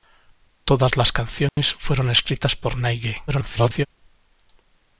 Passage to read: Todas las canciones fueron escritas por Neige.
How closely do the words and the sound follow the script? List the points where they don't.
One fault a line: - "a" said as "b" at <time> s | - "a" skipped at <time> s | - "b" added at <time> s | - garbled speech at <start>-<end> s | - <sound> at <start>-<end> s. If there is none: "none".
- dropout at 1.5-1.6 s
- garbled speech at 3.3-3.9 s